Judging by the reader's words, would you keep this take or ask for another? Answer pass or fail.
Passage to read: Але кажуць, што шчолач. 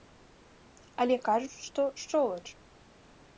pass